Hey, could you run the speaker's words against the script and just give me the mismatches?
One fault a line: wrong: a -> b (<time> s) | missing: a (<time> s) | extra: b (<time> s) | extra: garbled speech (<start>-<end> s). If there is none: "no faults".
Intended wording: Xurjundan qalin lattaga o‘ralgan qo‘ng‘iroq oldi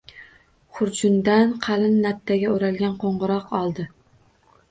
no faults